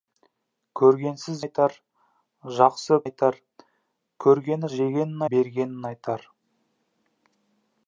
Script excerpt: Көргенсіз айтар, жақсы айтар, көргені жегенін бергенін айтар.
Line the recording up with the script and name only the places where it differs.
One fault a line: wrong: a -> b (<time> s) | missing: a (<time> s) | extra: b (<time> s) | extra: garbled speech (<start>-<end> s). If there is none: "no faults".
no faults